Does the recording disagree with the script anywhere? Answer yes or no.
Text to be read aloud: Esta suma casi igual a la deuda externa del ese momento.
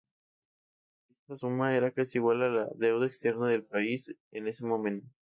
yes